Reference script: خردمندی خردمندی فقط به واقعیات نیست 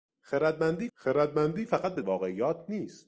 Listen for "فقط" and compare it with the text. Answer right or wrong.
right